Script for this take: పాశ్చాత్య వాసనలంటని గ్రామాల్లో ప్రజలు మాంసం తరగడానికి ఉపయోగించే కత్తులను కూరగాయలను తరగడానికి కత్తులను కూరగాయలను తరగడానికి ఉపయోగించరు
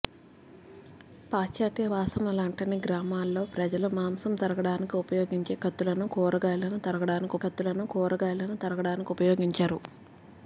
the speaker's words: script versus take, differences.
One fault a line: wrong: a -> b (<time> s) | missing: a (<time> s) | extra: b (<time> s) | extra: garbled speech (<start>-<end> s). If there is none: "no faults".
no faults